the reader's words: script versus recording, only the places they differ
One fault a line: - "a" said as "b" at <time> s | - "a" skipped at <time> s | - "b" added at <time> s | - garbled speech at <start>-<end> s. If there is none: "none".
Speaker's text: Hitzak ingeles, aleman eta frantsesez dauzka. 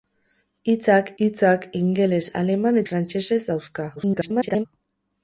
- "hitzak" added at 1.2 s
- "eta" skipped at 2.8 s
- garbled speech at 4.0-4.7 s